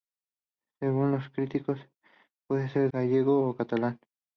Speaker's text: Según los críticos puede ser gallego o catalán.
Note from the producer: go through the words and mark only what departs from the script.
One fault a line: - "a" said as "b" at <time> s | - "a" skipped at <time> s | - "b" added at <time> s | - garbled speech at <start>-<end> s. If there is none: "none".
none